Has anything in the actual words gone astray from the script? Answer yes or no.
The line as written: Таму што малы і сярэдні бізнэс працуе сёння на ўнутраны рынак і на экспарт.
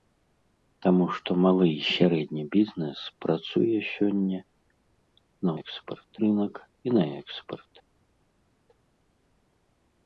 yes